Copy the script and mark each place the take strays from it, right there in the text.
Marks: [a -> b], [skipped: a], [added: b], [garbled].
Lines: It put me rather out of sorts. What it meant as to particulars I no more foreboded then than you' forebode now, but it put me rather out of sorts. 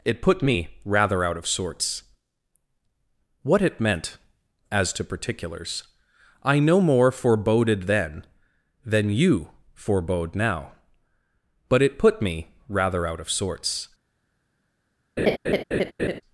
It put me rather out of sorts. What it meant as to particulars I no more foreboded then than you' forebode now, but it put me rather out of sorts.